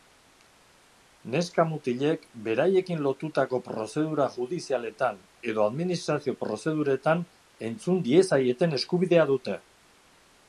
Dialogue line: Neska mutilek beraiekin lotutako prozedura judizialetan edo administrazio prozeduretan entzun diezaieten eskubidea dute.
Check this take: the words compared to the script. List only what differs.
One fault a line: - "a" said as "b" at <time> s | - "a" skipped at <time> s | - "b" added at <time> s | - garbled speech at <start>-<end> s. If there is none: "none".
none